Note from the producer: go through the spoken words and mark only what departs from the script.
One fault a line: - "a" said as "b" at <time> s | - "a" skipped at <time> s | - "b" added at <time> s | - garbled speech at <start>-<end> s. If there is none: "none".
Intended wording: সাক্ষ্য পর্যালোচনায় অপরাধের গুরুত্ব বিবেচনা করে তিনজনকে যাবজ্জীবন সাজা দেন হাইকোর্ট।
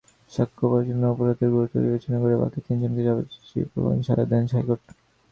- "বাকি" added at 2.4 s